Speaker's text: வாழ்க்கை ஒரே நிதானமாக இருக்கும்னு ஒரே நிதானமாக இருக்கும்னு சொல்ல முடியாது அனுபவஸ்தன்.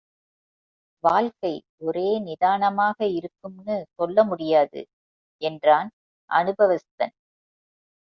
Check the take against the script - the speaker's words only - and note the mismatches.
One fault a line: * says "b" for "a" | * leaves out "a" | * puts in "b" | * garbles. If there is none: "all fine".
* leaves out "ஒரே நிதானமாக இருக்கும்னு"
* puts in "என்றான்"